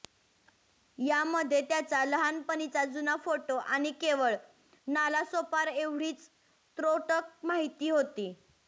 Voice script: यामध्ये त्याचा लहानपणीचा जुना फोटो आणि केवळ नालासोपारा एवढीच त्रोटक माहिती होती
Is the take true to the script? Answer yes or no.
yes